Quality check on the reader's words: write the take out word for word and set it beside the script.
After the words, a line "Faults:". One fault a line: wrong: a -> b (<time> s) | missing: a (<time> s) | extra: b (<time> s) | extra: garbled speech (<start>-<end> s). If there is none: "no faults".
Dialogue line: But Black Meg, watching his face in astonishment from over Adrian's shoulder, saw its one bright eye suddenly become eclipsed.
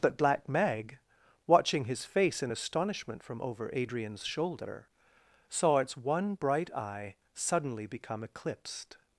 But Black Meg, watching his face in astonishment from over Adrian's shoulder, saw its one bright eye suddenly become eclipsed.
Faults:
no faults